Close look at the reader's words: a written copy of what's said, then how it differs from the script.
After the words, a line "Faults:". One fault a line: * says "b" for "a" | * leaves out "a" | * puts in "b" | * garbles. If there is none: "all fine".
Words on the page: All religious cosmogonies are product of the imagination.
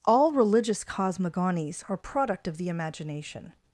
All religious cosmogonies are product of the imagination.
Faults:
all fine